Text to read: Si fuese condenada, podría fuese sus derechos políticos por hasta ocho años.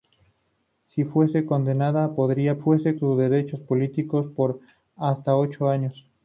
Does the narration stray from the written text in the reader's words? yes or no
no